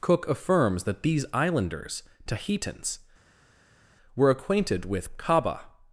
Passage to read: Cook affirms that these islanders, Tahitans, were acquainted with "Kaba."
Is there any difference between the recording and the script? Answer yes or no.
no